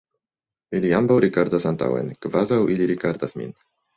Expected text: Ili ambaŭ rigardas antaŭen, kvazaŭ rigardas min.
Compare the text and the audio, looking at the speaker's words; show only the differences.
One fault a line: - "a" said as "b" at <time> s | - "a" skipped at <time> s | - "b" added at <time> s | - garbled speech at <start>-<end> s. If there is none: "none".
- "ili" added at 2.8 s